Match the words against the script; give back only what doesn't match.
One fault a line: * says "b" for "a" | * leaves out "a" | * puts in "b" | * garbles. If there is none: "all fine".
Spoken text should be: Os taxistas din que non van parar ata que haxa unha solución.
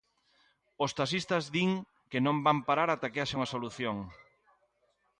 all fine